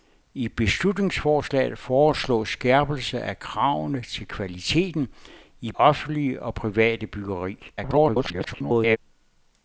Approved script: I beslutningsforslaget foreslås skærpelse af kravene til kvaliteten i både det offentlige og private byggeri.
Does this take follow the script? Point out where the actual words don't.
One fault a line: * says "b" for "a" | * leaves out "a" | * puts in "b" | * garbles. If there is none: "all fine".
* leaves out "både det"
* garbles